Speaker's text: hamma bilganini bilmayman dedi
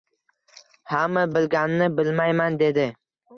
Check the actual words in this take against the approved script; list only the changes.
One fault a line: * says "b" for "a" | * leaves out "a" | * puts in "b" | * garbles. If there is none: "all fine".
all fine